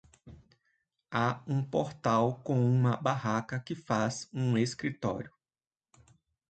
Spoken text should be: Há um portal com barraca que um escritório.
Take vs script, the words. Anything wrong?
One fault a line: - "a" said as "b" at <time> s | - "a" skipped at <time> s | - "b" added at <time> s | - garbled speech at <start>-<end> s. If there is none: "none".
- "uma" added at 2.6 s
- "faz" added at 3.8 s